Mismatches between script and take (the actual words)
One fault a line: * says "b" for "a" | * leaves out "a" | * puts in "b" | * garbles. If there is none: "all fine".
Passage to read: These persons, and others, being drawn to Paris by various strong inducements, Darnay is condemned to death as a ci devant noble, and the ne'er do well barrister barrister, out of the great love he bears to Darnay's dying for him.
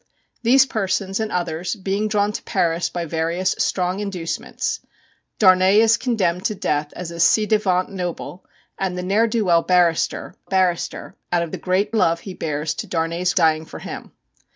all fine